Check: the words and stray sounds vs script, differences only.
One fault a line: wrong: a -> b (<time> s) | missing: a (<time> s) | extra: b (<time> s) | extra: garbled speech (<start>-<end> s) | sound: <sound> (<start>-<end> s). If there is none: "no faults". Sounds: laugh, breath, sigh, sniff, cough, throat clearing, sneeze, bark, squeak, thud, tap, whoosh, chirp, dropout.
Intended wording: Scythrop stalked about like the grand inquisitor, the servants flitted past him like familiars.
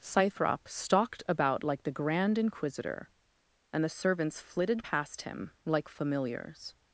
extra: and (3.7 s)